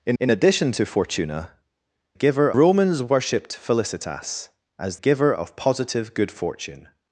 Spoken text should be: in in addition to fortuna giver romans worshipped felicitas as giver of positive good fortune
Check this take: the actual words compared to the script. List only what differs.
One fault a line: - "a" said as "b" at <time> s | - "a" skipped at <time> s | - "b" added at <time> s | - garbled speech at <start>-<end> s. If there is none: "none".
none